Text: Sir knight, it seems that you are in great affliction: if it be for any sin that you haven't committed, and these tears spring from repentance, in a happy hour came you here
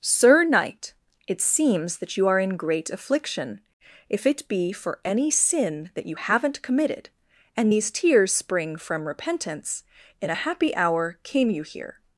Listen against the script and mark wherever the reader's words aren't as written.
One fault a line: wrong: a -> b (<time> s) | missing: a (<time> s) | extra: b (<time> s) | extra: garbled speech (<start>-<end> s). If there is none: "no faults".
no faults